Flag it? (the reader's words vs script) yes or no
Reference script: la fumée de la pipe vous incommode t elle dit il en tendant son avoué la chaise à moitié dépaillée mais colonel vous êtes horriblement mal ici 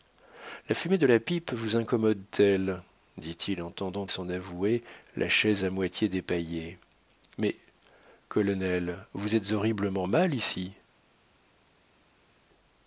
no